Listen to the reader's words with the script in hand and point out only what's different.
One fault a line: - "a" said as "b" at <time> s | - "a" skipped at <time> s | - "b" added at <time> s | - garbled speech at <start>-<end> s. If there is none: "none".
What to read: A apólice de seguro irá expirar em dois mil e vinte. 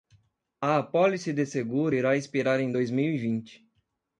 none